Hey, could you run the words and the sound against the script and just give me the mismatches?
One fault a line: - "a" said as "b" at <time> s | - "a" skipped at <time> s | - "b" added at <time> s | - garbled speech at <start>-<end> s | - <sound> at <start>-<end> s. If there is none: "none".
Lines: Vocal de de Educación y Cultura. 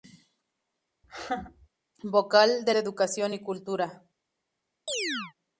- laugh at 1.0-1.7 s
- chirp at 4.9-5.3 s